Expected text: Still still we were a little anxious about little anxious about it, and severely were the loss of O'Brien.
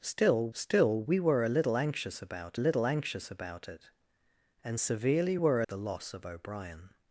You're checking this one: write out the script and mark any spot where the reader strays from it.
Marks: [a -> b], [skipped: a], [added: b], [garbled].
Still still we were a little anxious about little anxious about it, and severely were the loss of O'Brien.